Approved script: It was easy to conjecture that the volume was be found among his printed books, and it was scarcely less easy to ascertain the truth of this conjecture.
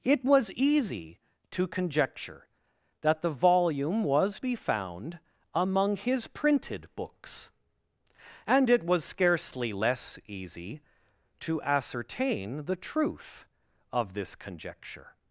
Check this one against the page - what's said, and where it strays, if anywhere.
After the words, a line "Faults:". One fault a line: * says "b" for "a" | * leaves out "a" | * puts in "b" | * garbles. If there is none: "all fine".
It was easy to conjecture that the volume was be found among his printed books, and it was scarcely less easy to ascertain the truth of this conjecture.
Faults:
all fine